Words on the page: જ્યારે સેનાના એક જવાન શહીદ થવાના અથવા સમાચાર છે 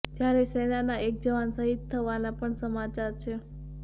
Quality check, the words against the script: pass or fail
fail